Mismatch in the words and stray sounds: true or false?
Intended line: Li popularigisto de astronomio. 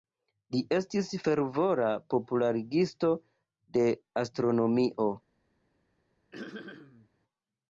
true